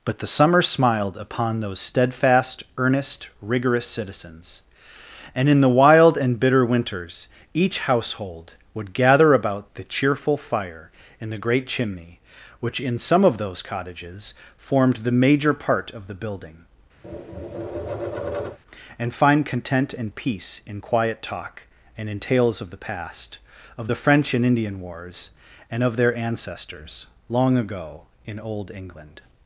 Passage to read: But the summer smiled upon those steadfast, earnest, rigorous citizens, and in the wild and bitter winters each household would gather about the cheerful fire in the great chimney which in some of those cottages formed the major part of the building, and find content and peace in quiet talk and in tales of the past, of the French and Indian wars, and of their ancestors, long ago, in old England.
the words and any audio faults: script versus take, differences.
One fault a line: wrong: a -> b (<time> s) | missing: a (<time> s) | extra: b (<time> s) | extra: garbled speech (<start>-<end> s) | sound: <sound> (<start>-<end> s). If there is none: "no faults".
sound: tap (17.0-18.6 s)